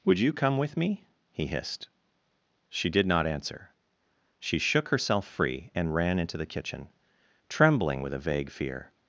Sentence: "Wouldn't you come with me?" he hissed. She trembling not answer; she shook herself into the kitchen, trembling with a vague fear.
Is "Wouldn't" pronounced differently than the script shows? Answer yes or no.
yes